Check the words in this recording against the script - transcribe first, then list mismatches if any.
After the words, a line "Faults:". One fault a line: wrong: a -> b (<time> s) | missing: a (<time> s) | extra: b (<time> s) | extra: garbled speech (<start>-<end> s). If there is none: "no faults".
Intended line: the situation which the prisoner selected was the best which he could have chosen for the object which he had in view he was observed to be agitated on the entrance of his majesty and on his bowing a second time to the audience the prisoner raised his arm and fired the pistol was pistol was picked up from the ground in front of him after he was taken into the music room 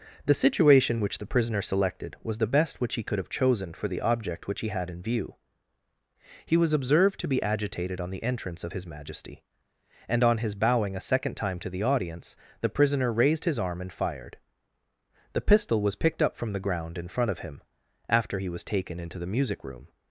the situation which the prisoner selected was the best which he could have chosen for the object which he had in view he was observed to be agitated on the entrance of his majesty and on his bowing a second time to the audience the prisoner raised his arm and fired the pistol was picked up from the ground in front of him after he was taken into the music room
Faults:
missing: pistol was (16.0 s)